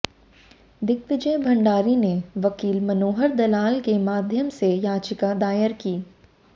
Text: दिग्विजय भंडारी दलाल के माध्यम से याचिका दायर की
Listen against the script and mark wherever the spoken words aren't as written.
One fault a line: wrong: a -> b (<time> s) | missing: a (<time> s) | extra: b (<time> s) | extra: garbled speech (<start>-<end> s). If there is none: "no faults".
extra: ने वकील मनोहर (1.9 s)